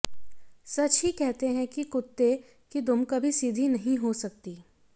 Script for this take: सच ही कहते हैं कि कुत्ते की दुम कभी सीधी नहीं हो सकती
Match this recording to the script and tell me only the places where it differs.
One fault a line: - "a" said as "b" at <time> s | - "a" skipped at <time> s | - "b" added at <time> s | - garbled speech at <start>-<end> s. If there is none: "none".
none